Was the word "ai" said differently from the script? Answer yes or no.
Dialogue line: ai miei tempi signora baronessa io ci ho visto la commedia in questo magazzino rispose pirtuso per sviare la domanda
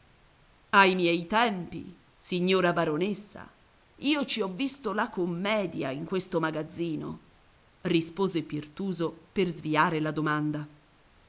no